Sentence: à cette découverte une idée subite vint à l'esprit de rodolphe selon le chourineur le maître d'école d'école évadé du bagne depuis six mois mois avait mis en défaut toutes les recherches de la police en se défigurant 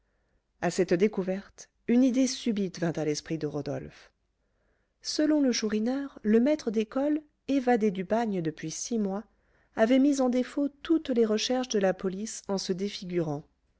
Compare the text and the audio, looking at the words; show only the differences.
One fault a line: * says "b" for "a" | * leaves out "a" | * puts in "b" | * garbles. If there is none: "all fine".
* leaves out "d'école"
* leaves out "mois"